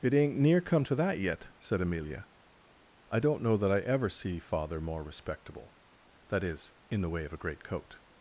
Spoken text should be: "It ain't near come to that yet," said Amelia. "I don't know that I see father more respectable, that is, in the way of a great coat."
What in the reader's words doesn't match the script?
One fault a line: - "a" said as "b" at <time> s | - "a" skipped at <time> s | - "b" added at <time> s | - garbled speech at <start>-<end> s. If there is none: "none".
- "ever" added at 3.8 s